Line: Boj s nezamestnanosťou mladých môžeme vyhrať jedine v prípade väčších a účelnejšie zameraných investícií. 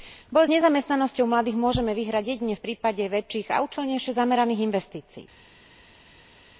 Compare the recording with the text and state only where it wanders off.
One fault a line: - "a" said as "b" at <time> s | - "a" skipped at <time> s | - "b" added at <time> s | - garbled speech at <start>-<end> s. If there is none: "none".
none